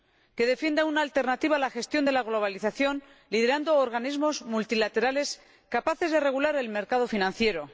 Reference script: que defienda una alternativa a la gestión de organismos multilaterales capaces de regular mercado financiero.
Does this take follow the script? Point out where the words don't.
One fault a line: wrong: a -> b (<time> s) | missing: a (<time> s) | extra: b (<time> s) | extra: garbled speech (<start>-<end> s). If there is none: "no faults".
extra: la globalización liderando (2.1 s)
extra: el (6.6 s)